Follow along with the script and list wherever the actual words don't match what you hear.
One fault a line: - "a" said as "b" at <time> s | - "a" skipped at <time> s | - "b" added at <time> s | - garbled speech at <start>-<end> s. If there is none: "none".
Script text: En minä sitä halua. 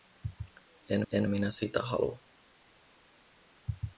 - "en" added at 1.1 s